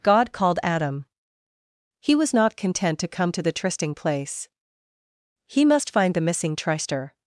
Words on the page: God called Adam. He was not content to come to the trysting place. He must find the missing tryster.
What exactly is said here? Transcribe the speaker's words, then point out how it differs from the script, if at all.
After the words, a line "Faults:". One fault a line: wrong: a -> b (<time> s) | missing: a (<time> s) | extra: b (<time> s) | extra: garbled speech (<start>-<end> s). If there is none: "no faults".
God called Adam. He was not content to come to the trysting place. He must find the missing tryster.
Faults:
no faults